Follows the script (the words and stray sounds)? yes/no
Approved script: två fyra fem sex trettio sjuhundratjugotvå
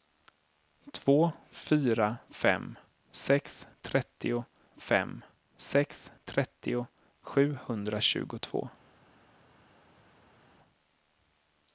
no